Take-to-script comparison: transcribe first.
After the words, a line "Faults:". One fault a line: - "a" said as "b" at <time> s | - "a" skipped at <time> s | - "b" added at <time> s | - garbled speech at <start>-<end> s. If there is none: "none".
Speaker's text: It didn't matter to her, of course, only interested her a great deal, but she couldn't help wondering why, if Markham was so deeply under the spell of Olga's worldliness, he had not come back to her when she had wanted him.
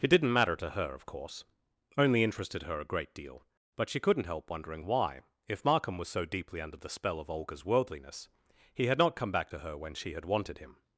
It didn't matter to her, of course, only interested her a great deal, but she couldn't help wondering why, if Markham was so deeply under the spell of Olga's worldliness, he had not come back to her when she had wanted him.
Faults:
none